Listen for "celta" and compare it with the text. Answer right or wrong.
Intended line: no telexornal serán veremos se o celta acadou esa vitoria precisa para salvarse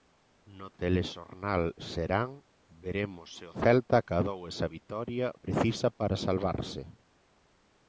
right